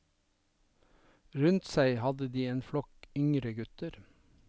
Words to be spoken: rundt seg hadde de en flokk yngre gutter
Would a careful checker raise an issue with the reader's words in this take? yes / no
no